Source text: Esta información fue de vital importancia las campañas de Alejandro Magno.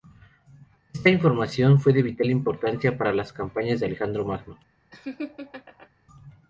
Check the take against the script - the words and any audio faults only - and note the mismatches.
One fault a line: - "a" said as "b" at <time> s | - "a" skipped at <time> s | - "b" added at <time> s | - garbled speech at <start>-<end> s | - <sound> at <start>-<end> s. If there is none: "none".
- "para" added at 3.0 s
- laugh at 4.9-5.9 s